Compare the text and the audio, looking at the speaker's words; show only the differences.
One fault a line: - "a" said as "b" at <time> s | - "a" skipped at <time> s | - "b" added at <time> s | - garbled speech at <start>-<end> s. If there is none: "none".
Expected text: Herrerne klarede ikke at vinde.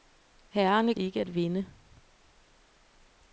- "klarede" skipped at 0.9 s